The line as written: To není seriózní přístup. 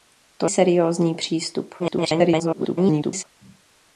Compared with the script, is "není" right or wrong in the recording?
wrong